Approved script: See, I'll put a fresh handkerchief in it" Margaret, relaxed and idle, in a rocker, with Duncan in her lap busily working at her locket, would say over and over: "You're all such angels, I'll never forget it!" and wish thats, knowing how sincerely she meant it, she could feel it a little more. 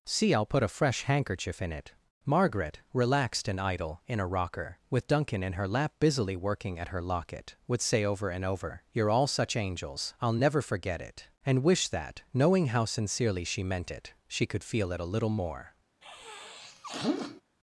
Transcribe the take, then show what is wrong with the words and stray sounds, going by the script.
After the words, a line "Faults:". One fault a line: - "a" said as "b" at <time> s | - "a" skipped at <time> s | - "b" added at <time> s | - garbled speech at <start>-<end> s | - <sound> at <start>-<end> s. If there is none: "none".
See, I'll put a fresh handkerchief in it" Margaret, relaxed and idle, in a rocker, with Duncan in her lap busily working at her locket, would say over and over: "You're all such angels, I'll never forget it!" and wish that, knowing how sincerely she meant it, she could feel it a little more.
Faults:
- "thats" said as "that" at 11.9 s
- sniff at 16.0-17.4 s